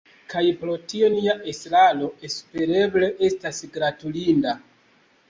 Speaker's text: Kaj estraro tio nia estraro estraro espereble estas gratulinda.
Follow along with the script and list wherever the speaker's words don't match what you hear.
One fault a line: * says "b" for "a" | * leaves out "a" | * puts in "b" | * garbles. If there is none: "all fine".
* says "pro" for "estraro"
* leaves out "estraro"